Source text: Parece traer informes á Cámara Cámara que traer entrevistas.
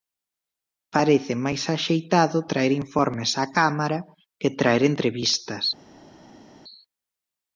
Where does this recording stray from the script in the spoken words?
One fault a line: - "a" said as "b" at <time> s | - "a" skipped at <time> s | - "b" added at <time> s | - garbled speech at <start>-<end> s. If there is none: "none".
- "máis axeitado" added at 1.4 s
- "Cámara" skipped at 4.0 s